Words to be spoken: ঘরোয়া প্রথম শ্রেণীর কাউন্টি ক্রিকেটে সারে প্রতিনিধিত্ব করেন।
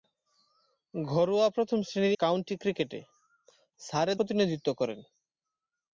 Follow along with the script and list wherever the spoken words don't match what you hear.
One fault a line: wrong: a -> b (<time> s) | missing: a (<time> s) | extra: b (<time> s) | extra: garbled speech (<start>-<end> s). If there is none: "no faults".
no faults